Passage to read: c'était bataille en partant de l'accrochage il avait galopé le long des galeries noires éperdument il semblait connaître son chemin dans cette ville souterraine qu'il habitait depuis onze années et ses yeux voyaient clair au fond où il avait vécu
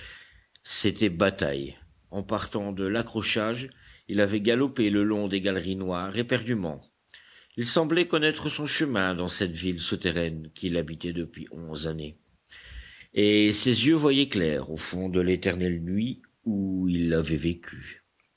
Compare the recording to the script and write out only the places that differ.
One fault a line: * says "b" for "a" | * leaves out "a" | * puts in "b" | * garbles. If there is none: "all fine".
* puts in "de l'éternelle nuit"